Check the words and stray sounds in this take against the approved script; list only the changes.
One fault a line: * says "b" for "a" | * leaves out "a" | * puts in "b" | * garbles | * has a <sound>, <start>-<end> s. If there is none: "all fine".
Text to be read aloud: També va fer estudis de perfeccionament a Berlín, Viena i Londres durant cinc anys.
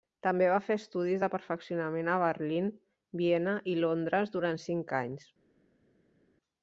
all fine